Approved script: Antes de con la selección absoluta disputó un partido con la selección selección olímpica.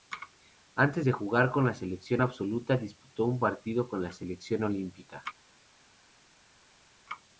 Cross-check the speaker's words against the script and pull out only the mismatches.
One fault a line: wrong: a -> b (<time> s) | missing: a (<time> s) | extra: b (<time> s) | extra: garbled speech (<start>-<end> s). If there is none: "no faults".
extra: jugar (1.1 s)
missing: selección (4.6 s)